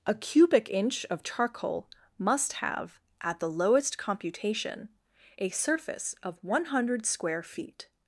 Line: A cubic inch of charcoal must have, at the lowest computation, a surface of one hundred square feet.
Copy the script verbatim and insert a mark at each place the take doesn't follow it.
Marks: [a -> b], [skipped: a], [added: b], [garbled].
A cubic inch of charcoal must have, at the lowest computation, a surface of one hundred square feet.